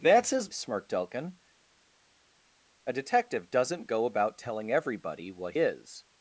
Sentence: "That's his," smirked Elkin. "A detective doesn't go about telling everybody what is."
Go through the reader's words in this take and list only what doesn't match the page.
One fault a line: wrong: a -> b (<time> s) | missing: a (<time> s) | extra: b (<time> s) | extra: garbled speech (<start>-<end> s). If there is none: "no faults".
no faults